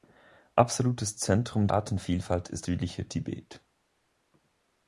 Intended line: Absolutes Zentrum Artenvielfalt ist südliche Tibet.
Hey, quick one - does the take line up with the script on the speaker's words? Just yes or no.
yes